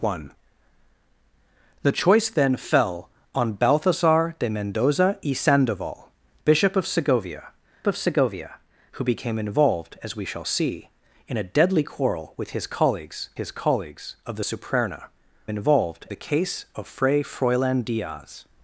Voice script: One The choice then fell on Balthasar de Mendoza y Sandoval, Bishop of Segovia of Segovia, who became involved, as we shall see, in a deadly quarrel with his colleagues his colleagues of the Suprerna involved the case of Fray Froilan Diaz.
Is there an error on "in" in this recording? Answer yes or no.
no